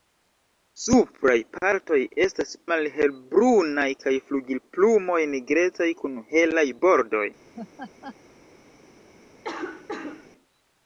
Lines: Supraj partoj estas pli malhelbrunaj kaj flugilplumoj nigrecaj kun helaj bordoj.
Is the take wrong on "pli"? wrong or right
wrong